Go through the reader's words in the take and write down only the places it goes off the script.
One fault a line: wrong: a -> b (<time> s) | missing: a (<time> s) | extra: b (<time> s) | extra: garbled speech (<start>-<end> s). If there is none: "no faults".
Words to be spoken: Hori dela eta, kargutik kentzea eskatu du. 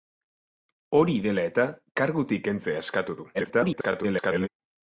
extra: garbled speech (3.3-4.5 s)